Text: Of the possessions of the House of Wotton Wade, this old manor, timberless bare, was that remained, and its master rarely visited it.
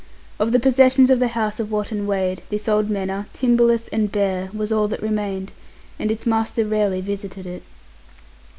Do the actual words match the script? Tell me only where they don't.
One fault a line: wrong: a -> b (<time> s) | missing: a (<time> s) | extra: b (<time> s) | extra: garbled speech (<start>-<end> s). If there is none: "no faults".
extra: and (3.9 s)
extra: all (4.7 s)